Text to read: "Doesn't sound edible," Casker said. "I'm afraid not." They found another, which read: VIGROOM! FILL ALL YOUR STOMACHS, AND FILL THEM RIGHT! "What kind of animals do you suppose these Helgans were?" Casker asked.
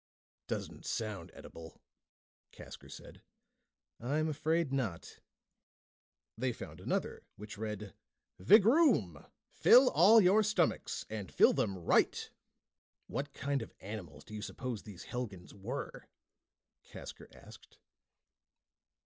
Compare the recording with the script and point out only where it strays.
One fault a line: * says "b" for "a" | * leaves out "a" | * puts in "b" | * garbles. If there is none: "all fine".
all fine